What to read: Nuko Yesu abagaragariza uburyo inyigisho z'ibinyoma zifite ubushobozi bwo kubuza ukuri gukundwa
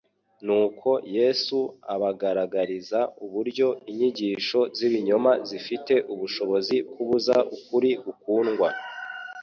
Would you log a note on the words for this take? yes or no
yes